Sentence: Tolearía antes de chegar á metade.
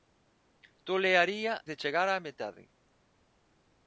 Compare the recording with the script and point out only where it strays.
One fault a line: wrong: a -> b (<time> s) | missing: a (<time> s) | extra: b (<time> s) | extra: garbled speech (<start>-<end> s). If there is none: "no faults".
missing: antes (1.5 s)